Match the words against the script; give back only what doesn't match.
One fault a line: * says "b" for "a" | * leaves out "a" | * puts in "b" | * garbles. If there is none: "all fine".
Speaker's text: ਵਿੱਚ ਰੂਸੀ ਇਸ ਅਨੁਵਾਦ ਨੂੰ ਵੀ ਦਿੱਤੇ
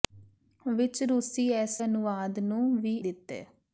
all fine